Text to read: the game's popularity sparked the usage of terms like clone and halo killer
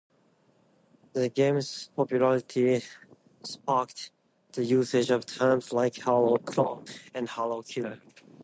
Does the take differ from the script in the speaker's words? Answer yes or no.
yes